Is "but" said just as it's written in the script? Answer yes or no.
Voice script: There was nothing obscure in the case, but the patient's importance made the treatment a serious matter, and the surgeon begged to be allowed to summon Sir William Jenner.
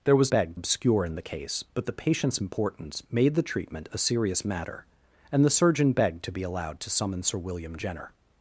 yes